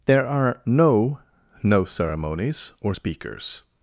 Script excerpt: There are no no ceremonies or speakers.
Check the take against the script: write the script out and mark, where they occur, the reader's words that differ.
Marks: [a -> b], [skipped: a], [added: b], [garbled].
There are no no ceremonies or speakers.